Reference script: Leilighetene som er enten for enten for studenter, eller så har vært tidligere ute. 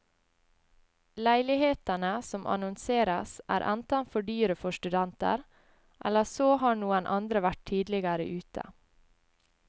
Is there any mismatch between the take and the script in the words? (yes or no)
yes